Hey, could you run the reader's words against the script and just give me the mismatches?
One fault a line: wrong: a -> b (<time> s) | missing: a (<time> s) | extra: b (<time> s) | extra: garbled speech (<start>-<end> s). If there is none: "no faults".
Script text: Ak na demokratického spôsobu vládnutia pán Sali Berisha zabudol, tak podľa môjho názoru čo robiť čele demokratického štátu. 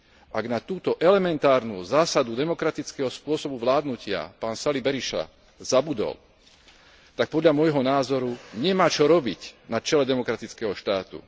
extra: túto elementárnu zásadu (0.6 s)
extra: nemá (8.5 s)
extra: na (9.7 s)